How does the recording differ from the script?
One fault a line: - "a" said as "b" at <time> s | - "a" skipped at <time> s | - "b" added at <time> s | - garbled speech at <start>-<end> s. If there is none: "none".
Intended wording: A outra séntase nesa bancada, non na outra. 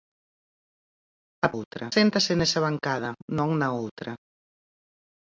none